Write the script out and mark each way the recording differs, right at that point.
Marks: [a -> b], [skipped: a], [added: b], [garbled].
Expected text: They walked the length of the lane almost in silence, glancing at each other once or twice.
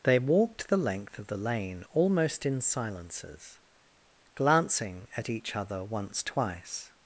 They walked the length of the lane almost in [silence, -> silences] glancing at each other once [skipped: or] twice.